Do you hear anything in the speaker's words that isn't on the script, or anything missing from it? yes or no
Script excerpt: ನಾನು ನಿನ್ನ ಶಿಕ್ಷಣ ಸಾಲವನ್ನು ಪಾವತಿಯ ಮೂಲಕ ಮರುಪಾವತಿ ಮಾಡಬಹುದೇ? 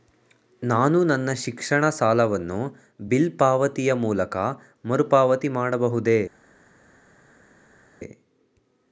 yes